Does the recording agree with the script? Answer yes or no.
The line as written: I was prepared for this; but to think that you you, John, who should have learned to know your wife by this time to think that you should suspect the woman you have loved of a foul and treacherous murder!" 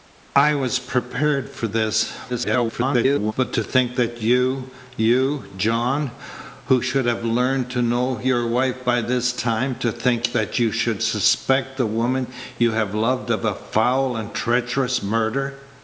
no